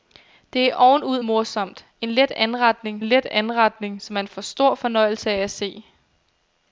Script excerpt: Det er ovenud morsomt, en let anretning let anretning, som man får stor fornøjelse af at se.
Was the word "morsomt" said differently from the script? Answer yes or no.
no